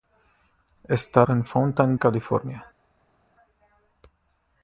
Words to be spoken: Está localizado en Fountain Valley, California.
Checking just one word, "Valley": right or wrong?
wrong